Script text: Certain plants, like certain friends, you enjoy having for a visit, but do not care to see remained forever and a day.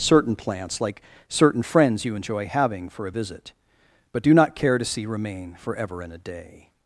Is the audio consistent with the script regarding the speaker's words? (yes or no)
no